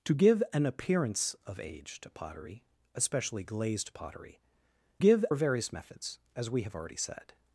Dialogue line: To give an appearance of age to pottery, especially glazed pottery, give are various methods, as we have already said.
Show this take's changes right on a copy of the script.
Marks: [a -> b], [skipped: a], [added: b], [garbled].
To give an appearance of age to pottery, especially glazed pottery, give are various methods, as we have already said.